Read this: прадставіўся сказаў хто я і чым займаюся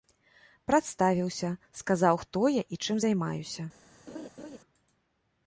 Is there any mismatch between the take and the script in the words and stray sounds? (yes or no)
yes